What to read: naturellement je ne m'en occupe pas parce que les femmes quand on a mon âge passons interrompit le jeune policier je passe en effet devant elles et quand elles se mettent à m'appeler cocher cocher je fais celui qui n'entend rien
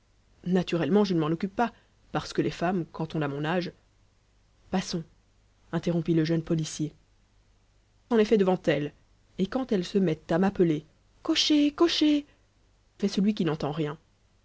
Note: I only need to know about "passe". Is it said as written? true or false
false